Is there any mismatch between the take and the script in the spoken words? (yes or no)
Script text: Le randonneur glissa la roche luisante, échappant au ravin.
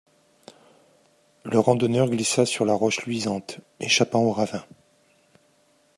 yes